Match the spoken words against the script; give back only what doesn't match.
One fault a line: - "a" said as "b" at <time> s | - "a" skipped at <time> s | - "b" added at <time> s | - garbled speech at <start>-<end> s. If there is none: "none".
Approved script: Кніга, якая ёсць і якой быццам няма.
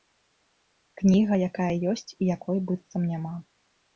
none